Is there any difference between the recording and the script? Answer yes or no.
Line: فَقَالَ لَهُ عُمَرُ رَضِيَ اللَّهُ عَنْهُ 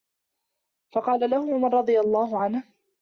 no